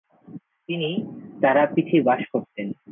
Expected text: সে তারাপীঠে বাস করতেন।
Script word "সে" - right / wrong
wrong